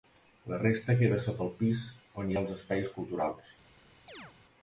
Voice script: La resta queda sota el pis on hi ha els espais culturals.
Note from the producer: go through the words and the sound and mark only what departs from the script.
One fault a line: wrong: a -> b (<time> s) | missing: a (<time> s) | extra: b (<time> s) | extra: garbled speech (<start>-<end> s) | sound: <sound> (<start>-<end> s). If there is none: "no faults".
sound: chirp (4.1-4.3 s)